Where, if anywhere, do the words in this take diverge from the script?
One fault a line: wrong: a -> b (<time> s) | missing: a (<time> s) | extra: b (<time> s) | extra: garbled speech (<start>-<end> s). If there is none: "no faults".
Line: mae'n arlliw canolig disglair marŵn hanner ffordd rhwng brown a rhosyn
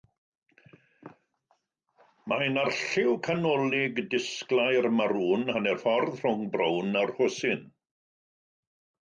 no faults